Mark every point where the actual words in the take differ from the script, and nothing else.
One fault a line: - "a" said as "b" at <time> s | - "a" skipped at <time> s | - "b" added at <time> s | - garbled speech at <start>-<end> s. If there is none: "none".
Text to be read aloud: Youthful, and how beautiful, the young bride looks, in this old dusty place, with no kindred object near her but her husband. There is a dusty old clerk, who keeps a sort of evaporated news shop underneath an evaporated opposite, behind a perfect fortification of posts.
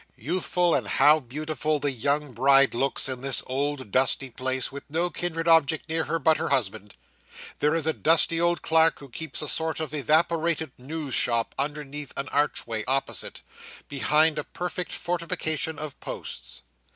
- "evaporated" said as "archway" at 12.3 s